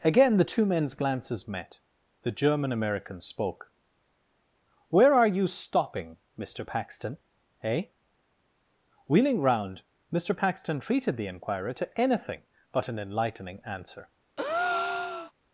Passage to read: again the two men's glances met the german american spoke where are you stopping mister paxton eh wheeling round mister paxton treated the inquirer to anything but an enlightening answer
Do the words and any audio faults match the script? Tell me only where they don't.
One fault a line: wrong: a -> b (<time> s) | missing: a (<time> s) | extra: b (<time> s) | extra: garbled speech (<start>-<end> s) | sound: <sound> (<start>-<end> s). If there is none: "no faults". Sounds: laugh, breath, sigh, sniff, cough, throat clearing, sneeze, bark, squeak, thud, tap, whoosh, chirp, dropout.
sound: breath (14.4-15.3 s)